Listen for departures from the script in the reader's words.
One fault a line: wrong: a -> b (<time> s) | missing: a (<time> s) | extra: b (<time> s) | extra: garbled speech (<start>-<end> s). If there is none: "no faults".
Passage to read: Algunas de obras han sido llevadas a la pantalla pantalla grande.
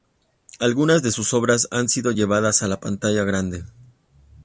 extra: sus (1.1 s)
missing: pantalla (3.2 s)